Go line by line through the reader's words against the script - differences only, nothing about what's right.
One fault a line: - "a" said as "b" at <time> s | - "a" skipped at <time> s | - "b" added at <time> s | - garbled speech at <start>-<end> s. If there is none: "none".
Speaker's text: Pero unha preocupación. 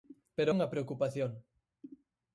none